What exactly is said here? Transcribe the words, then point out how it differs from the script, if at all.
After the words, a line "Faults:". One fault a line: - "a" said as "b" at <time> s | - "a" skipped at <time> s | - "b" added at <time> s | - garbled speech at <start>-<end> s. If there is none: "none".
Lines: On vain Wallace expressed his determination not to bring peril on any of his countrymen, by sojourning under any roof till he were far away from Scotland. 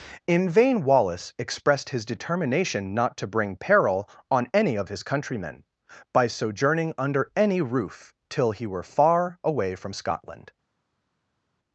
In vain Wallace expressed his determination not to bring peril on any of his countrymen, by sojourning under any roof till he were far away from Scotland.
Faults:
- "On" said as "In" at 0.2 s